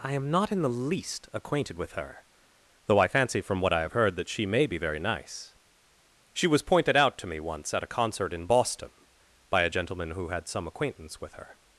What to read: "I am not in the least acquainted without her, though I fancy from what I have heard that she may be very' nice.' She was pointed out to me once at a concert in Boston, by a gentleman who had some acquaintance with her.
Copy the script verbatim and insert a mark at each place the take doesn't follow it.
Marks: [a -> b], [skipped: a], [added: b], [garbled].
"I am not in the least acquainted [without -> with] her, though I fancy from what I have heard that she may be very' nice.' She was pointed out to me once at a concert in Boston, by a gentleman who had some acquaintance with her.